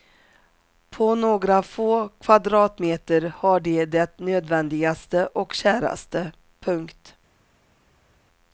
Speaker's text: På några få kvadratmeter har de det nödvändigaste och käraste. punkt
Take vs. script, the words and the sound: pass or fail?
pass